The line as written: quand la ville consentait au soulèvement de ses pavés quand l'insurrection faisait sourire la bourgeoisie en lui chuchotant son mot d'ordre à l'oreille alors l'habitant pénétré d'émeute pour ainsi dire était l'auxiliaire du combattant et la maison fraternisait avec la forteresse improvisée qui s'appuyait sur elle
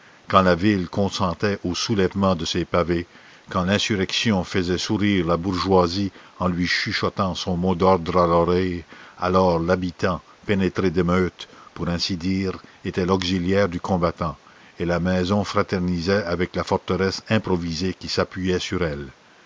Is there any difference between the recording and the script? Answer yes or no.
no